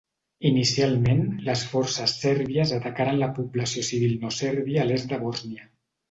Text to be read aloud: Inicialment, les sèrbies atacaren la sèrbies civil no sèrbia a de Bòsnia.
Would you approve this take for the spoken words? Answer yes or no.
no